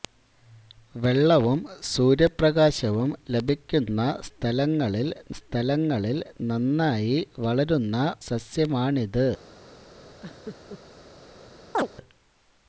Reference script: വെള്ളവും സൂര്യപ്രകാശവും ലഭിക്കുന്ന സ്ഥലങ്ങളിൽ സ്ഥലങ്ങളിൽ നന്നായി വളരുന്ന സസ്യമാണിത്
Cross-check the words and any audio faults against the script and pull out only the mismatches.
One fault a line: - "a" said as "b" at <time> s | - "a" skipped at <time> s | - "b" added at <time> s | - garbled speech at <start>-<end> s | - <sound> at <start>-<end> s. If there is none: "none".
- laugh at 10.2-10.8 s
- chirp at 11.7-11.9 s